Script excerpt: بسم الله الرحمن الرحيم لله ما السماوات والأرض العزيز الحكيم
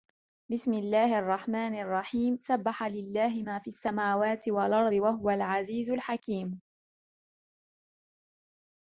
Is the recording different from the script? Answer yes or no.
yes